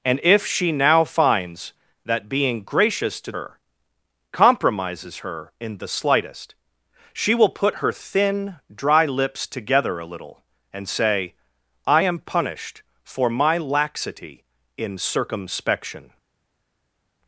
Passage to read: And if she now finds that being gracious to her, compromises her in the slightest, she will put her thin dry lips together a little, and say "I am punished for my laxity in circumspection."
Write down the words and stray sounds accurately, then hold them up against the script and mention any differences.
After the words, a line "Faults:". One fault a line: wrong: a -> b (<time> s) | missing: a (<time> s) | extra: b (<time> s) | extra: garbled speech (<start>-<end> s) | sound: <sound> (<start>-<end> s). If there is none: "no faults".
And if she now finds that being gracious to her, compromises her in the slightest, she will put her thin dry lips together a little, and say "I am punished for my laxity in circumspection."
Faults:
no faults